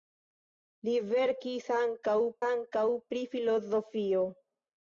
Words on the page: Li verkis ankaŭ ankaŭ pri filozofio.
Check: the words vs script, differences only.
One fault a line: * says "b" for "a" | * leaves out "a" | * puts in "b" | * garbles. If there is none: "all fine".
all fine